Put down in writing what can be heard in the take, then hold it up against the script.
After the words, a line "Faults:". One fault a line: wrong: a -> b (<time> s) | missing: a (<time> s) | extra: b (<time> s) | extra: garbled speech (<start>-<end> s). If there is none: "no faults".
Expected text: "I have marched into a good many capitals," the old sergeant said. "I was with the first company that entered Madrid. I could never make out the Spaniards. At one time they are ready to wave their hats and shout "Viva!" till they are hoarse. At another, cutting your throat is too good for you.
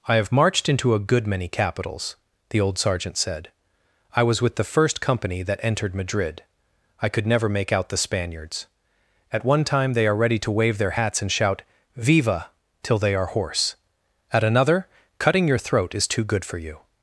"I have marched into a good many capitals," the old sergeant said. "I was with the first company that entered Madrid. I could never make out the Spaniards. At one time they are ready to wave their hats and shout "Viva!" till they are hoarse. At another, cutting your throat is too good for you.
Faults:
no faults